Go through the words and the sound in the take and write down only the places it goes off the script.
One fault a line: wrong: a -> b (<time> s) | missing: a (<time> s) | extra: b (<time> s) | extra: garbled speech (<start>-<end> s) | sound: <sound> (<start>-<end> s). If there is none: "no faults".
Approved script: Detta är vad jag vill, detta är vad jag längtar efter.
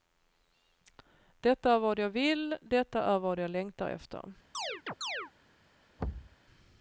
sound: chirp (4.5-5.3 s)
sound: thud (6.0-6.4 s)